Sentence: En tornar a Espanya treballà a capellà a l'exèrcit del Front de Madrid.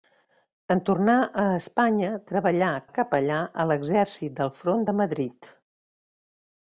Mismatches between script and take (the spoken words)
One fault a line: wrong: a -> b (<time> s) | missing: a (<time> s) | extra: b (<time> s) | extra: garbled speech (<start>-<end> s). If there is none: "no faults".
no faults